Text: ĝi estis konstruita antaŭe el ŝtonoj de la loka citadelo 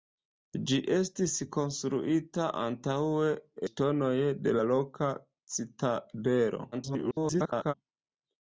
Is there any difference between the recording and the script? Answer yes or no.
yes